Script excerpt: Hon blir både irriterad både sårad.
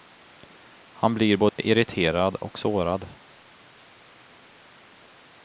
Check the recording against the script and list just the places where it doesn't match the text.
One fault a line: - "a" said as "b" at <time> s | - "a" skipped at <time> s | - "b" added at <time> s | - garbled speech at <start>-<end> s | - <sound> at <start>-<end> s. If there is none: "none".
- "Hon" said as "Han" at 0.9 s
- dropout at 1.5-1.6 s
- "både" said as "och" at 2.3 s